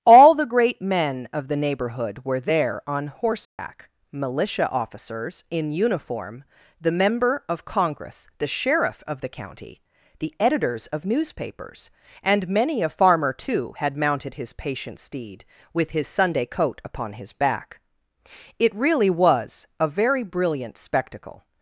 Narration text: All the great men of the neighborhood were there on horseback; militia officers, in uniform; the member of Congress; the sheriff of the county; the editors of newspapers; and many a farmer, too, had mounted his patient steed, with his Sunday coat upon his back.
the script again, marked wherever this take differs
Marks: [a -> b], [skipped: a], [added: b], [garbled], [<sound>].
All the great men of the neighborhood were there on horseback; [dropout] militia officers, in uniform; the member of Congress; the sheriff of the county; the editors of newspapers; and many a farmer, too, had mounted his patient steed, with his Sunday coat upon his back. [added: It really was a very brilliant spectacle]